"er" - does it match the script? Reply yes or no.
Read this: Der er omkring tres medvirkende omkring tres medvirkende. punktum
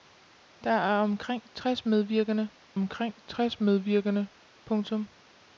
yes